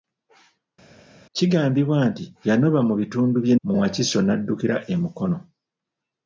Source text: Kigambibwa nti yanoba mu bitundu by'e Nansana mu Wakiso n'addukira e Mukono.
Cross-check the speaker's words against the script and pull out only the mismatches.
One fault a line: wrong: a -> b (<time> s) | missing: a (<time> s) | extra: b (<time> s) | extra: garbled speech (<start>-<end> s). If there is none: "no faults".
missing: Nansana (3.6 s)